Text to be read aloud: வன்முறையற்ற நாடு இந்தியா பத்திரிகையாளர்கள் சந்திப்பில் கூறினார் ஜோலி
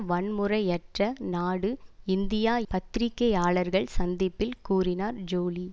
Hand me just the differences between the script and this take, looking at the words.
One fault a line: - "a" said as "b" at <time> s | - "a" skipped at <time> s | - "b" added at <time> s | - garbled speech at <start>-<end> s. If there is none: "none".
none